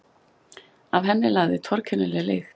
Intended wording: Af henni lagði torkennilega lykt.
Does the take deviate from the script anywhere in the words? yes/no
no